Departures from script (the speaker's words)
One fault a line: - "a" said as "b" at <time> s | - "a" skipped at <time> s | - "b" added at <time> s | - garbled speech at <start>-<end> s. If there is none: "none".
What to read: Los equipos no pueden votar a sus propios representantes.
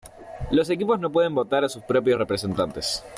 none